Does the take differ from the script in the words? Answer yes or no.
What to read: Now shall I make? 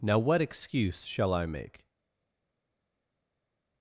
yes